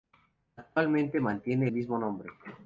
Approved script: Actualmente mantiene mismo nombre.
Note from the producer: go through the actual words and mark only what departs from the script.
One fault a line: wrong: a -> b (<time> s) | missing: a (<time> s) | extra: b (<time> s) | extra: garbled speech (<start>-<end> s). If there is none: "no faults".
no faults